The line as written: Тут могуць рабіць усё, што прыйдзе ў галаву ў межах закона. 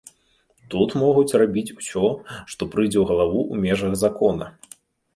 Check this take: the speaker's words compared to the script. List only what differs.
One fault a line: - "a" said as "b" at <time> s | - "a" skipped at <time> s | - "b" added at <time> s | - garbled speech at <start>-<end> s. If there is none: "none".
none